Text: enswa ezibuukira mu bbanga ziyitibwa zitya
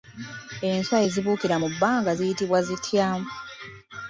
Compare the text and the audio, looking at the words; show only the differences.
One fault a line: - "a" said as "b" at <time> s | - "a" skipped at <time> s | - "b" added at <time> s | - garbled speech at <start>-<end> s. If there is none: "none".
none